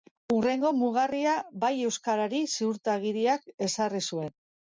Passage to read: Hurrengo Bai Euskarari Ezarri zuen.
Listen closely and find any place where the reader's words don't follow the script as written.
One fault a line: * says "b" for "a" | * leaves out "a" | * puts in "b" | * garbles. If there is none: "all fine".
* puts in "mugarria"
* puts in "Ziurtagiriak"